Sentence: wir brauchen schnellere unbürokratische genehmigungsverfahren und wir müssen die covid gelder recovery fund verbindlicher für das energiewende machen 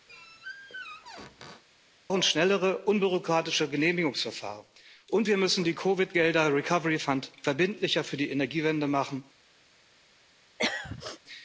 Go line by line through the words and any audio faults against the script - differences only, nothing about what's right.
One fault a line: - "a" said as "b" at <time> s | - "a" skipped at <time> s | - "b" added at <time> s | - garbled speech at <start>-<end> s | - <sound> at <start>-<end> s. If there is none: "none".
- squeak at 0.1-1.6 s
- "das" said as "die" at 8.2 s
- throat clearing at 10.6-11.2 s